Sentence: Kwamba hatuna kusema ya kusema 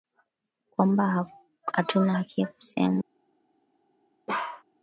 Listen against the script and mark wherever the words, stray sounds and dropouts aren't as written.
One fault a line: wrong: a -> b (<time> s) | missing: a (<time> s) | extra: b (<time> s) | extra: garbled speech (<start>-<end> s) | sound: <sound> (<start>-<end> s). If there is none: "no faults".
wrong: kusema -> haki (2.1 s)
sound: bark (4.3-4.6 s)